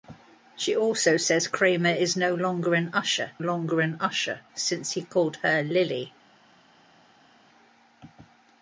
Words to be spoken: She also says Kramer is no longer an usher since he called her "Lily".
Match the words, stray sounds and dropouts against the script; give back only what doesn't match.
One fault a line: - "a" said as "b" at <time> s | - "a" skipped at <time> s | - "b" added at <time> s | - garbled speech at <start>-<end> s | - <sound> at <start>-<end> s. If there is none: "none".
- "longer an usher" added at 3.4 s